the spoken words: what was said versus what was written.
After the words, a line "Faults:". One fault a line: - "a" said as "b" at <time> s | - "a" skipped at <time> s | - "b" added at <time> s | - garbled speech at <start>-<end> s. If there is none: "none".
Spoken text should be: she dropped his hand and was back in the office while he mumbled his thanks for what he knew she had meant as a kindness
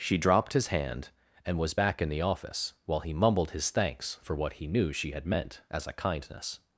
she dropped his hand and was back in the office while he mumbled his thanks for what he knew she had meant as a kindness
Faults:
none